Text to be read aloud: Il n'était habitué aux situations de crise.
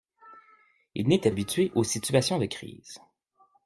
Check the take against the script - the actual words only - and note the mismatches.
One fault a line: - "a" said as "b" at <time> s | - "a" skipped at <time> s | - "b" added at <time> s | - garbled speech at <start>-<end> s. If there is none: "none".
none